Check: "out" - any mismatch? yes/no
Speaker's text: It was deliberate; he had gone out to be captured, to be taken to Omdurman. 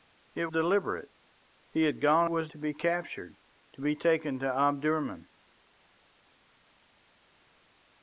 yes